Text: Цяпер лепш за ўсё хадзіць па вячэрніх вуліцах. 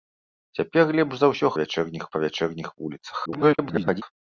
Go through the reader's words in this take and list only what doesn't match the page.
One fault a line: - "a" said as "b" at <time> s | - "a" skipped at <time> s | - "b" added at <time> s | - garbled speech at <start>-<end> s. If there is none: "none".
- "хадзіць" said as "вячэрніх" at 1.6 s
- garbled speech at 3.3-4.0 s